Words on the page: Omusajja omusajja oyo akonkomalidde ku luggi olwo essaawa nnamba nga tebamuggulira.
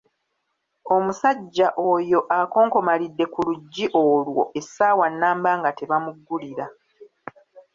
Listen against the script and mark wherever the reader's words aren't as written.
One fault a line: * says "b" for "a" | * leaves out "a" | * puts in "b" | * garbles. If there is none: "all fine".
* leaves out "omusajja"